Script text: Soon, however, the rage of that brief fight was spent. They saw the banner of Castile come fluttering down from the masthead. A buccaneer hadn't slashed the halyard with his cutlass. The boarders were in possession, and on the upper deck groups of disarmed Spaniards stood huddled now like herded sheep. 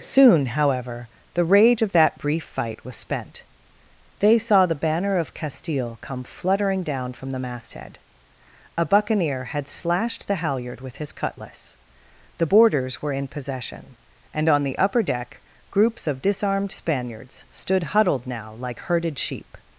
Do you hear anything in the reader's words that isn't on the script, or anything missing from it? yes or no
yes